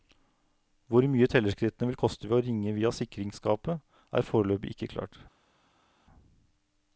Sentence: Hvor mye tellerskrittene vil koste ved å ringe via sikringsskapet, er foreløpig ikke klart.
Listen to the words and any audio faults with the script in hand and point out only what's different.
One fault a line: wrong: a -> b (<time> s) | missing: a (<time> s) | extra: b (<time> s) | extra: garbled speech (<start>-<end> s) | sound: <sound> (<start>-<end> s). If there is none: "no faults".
no faults